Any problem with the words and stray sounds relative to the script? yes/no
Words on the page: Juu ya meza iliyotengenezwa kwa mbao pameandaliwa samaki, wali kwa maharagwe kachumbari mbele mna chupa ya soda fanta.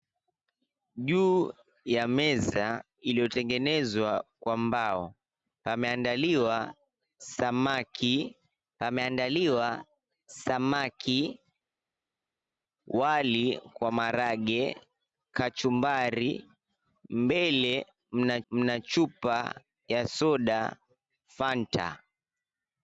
yes